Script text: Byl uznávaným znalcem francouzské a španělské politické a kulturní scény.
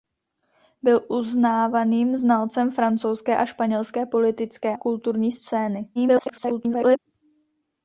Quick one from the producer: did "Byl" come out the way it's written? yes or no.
yes